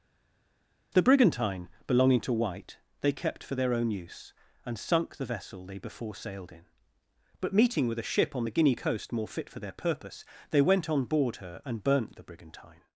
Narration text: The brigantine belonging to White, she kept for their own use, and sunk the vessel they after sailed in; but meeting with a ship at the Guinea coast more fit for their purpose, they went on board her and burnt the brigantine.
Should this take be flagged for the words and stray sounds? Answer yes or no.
yes